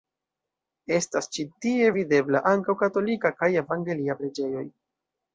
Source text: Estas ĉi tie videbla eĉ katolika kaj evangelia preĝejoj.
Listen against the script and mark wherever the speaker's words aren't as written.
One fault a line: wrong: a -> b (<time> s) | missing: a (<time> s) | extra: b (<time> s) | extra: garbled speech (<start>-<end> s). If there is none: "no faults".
wrong: eĉ -> ankaŭ (2.5 s)